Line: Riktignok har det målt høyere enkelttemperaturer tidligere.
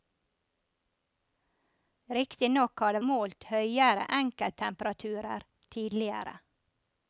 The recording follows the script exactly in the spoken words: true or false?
true